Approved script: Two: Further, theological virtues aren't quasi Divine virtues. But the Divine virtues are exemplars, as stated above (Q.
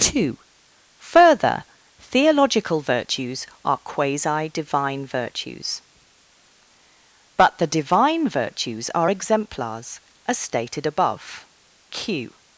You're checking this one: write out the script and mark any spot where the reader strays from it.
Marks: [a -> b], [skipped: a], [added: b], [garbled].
Two: Further, theological virtues [aren't -> are] quasi Divine virtues. But the Divine virtues are exemplars, as stated above (Q.